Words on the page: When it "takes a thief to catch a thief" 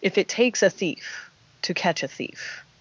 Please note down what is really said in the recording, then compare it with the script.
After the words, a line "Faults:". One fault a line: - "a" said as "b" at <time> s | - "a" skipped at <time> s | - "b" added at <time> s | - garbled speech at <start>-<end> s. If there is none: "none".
If it "takes a thief to catch a thief"
Faults:
- "When" said as "If" at 0.0 s